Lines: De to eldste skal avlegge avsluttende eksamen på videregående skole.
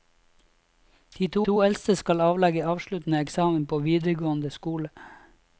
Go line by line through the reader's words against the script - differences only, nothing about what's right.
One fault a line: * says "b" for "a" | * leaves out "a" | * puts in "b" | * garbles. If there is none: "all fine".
* puts in "to"